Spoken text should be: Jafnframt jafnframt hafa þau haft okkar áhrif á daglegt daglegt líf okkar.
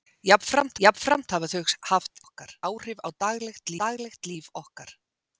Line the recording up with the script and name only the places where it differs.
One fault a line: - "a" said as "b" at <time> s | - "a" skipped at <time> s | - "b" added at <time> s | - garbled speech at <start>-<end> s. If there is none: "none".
none